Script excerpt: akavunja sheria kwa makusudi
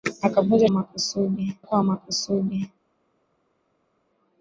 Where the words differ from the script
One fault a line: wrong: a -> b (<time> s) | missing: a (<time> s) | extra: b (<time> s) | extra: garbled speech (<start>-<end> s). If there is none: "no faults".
wrong: sheria -> makusudi (0.7 s)